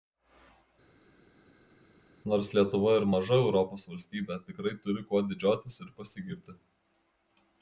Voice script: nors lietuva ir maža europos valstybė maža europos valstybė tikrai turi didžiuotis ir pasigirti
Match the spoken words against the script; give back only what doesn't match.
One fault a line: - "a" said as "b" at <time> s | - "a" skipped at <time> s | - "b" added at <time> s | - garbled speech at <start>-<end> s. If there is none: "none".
- "maža europos valstybė" skipped at 4.4 s
- "kuo" added at 5.1 s